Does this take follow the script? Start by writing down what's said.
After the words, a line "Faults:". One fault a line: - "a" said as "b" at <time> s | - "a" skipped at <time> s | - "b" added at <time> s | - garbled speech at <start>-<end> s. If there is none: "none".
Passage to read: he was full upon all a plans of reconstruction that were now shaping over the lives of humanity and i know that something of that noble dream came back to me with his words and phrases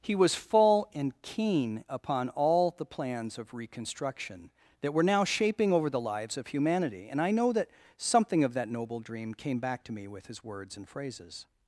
he was full and keen upon all the plans of reconstruction that were now shaping over the lives of humanity and i know that something of that noble dream came back to me with his words and phrases
Faults:
- "and keen" added at 0.9 s
- "a" said as "the" at 2.7 s